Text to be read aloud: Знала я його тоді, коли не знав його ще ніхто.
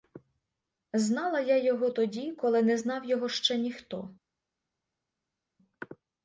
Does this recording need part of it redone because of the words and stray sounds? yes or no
no